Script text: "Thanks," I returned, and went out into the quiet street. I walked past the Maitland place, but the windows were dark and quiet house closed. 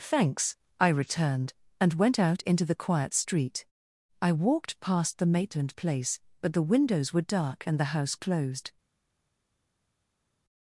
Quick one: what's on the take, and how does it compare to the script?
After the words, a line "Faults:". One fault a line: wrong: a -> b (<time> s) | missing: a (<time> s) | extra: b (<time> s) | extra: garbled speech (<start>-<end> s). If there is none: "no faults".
"Thanks," I returned, and went out into the quiet street. I walked past the Maitland place, but the windows were dark and the house closed.
Faults:
wrong: quiet -> the (7.8 s)